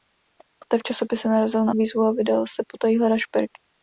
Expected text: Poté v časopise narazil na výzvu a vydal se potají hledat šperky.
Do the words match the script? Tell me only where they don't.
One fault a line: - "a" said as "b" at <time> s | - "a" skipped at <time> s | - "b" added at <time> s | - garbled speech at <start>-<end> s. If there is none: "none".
none